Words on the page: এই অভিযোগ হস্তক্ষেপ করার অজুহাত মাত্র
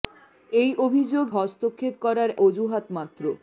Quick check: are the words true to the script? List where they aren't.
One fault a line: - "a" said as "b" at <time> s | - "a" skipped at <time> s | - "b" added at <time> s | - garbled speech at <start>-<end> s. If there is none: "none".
none